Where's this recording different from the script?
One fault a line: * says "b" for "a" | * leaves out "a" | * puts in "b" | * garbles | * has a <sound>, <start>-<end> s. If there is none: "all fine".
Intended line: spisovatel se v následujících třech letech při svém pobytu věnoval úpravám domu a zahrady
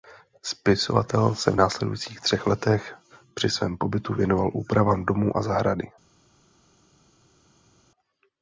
all fine